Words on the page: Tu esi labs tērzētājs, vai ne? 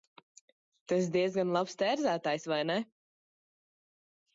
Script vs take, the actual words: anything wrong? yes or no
yes